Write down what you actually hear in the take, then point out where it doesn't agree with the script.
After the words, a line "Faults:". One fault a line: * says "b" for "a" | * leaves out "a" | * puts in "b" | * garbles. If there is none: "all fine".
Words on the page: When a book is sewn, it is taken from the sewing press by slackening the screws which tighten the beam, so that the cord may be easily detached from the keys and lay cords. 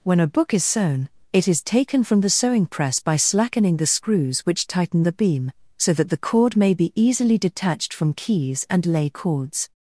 When a book is sewn, it is taken from the sewing press by slackening the screws which tighten the beam, so that the cord may be easily detached from keys and lay cords.
Faults:
* leaves out "the"